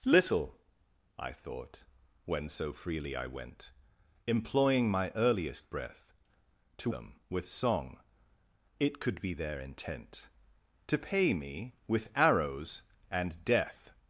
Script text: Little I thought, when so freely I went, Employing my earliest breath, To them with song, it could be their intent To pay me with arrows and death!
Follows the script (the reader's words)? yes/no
yes